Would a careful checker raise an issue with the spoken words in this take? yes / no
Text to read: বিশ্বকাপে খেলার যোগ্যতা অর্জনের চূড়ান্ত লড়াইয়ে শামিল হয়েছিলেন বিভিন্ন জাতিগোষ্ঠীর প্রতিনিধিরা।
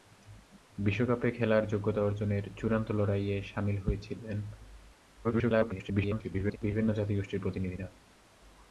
yes